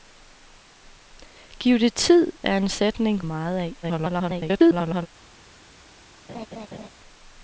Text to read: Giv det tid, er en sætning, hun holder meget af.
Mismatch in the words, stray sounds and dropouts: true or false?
true